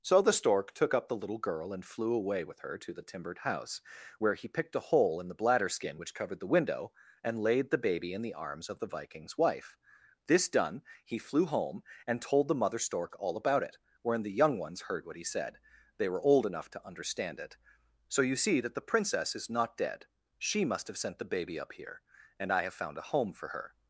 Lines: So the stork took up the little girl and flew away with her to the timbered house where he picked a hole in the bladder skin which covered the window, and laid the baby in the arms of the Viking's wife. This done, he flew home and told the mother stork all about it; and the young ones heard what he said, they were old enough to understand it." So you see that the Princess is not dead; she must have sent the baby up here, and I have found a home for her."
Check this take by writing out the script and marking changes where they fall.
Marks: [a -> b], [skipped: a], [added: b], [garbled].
So the stork took up the little girl and flew away with her to the timbered house where he picked a hole in the bladder skin which covered the window, and laid the baby in the arms of the Viking's wife. This done, he flew home and told the mother stork all about it; [and -> wherein] the young ones heard what he said, they were old enough to understand it." So you see that the Princess is not dead; she must have sent the baby up here, and I have found a home for her."